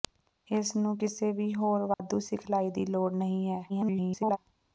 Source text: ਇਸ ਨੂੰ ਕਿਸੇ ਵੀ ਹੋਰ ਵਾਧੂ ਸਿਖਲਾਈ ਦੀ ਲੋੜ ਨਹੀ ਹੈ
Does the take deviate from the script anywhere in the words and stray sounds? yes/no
yes